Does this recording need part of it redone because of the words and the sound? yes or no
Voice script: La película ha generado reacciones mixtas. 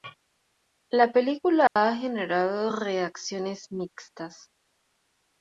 yes